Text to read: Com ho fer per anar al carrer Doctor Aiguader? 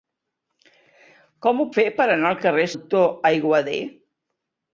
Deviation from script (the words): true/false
false